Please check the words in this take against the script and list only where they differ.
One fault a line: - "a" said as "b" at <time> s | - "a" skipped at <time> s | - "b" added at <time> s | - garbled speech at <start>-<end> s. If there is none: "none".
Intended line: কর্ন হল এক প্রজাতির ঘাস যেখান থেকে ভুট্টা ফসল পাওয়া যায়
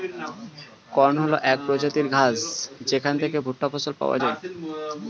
none